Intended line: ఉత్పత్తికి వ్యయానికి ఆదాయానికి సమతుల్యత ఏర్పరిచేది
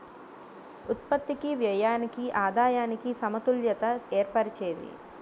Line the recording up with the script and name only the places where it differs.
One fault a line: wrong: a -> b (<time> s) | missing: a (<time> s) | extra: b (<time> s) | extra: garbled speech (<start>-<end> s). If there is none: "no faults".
no faults